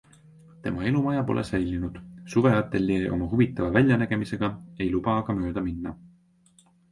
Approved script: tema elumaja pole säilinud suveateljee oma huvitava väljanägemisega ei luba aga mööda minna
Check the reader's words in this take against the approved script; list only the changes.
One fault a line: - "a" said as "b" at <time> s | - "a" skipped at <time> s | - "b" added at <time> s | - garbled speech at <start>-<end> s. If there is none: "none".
none